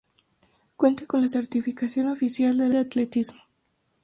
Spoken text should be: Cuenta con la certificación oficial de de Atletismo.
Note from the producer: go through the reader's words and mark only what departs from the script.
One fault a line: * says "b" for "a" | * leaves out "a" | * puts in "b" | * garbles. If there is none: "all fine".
all fine